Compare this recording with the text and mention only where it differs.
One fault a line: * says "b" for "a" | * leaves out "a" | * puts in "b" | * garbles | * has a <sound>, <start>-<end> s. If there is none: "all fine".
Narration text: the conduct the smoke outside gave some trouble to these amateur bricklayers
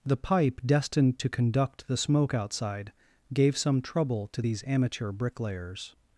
* puts in "pipe destined to"